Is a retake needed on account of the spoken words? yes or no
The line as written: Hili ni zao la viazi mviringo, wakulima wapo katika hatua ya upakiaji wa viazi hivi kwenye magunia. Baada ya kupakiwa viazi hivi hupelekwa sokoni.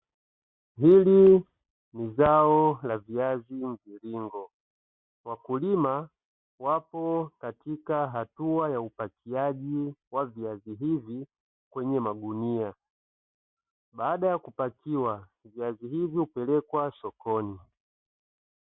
no